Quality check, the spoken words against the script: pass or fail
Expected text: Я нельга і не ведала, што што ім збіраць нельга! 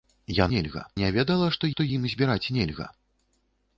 pass